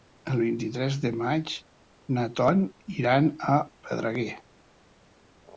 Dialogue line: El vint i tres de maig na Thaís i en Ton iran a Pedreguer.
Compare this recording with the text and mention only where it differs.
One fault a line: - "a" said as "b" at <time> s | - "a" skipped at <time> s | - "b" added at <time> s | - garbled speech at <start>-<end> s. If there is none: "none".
- "Thaís i en" skipped at 2.2 s